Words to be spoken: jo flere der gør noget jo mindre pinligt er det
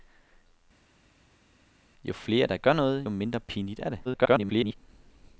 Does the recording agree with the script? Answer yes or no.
no